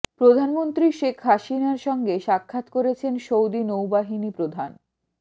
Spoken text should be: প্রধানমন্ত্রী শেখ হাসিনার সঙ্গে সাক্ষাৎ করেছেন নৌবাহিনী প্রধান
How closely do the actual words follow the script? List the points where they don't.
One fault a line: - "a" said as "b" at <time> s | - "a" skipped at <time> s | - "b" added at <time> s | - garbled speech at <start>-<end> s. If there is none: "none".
- "সৌদি" added at 3.3 s